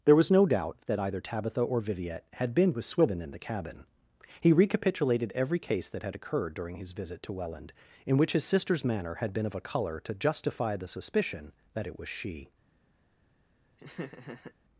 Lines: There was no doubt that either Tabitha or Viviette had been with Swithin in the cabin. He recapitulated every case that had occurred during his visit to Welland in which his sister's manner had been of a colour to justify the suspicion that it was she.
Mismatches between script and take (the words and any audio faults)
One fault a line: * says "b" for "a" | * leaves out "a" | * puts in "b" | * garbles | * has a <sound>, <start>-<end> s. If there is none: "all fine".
* has a laugh, 13.8-14.5 s